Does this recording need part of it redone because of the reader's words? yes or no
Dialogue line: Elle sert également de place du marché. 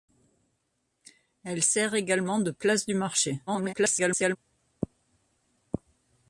yes